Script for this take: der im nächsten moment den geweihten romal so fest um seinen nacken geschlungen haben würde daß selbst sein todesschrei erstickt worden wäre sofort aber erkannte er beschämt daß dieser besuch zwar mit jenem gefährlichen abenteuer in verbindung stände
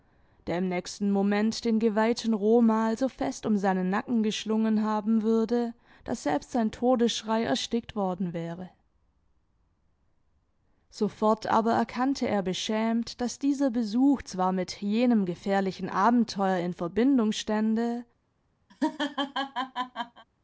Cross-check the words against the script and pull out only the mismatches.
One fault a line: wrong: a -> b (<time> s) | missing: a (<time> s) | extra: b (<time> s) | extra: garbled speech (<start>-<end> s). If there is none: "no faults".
no faults